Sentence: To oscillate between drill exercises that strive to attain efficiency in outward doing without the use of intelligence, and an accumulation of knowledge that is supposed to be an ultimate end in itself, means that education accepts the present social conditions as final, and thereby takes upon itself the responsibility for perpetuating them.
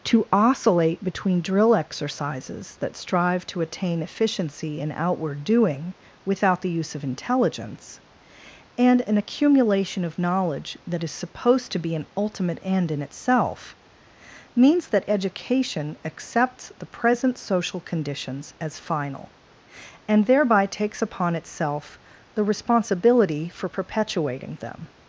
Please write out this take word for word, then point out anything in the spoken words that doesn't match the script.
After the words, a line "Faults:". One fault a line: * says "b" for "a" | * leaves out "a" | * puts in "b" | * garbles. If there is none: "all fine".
To oscillate between drill exercises that strive to attain efficiency in outward doing without the use of intelligence, and an accumulation of knowledge that is supposed to be an ultimate end in itself, means that education accepts the present social conditions as final, and thereby takes upon itself the responsibility for perpetuating them.
Faults:
all fine